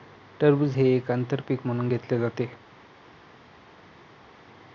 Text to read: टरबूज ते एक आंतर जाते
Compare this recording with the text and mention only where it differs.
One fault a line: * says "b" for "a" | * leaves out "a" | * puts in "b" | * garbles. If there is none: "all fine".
* says "हे" for "ते"
* puts in "पीक म्हणून घेतले"